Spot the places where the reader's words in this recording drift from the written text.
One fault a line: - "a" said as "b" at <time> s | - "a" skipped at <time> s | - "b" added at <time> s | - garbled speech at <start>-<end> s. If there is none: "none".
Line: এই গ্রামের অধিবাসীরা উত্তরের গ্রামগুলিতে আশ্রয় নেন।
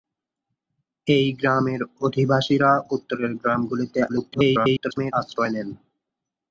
- garbled speech at 4.1-5.1 s